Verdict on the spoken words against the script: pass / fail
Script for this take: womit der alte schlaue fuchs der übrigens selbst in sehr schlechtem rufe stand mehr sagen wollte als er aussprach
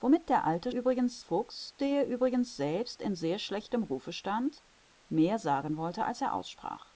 fail